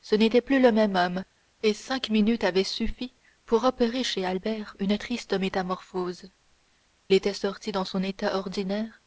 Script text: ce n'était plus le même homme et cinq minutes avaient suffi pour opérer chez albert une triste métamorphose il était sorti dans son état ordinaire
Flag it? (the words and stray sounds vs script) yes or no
yes